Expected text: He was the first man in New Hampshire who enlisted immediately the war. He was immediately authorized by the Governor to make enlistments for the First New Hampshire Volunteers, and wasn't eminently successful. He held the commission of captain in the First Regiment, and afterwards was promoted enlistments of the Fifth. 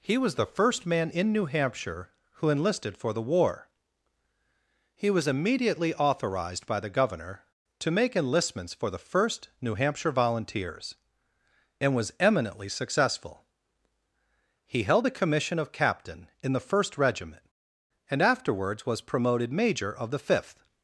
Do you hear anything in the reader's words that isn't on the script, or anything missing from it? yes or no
yes